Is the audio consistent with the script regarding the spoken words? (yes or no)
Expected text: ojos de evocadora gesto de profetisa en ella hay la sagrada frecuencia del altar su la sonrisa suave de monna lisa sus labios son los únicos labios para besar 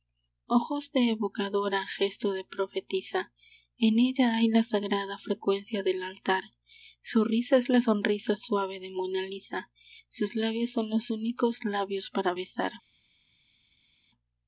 no